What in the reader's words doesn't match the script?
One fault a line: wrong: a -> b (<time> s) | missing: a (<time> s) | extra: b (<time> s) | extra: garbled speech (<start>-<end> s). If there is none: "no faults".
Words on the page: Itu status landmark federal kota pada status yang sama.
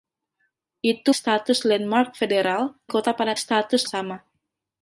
no faults